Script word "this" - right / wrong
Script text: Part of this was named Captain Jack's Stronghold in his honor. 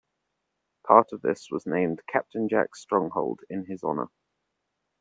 right